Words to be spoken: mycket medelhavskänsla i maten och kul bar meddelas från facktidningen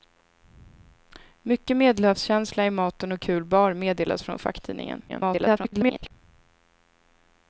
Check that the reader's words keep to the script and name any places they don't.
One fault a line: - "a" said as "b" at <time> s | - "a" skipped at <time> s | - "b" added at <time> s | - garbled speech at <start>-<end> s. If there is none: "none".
- garbled speech at 5.1-6.1 s